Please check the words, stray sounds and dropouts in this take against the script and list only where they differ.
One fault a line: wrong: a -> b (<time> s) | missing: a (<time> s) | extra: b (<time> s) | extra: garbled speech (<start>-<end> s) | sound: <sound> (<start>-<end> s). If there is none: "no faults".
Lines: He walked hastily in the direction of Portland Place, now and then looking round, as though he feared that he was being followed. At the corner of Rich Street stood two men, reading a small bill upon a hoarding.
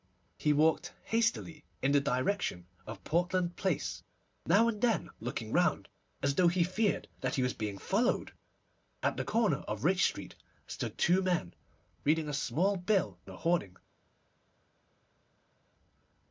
missing: upon (13.2 s)